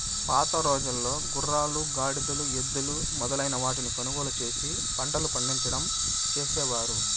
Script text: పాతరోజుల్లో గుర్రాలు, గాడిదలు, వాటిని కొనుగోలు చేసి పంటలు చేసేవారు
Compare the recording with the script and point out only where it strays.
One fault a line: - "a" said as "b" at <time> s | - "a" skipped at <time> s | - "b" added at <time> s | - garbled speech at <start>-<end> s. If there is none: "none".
- "ఎద్దులు మొదలైన" added at 2.6 s
- "పండించడం" added at 5.3 s